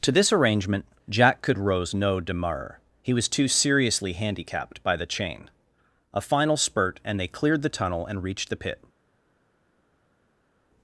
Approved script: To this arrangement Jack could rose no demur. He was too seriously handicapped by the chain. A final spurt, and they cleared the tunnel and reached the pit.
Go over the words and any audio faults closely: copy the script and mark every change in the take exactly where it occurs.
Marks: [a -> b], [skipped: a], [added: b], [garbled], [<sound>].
To this arrangement Jack could rose no demur. He was too seriously handicapped by the chain. A final spurt, and they cleared the tunnel and reached the pit.